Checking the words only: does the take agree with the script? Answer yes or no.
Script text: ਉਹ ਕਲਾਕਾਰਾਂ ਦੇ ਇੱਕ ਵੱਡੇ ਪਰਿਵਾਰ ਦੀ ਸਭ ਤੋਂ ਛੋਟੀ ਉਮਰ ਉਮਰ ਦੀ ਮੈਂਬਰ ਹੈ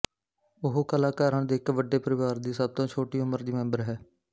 no